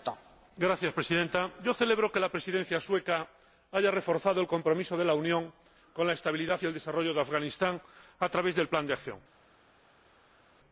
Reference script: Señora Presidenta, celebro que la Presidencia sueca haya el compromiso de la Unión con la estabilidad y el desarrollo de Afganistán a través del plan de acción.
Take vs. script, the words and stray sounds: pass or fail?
fail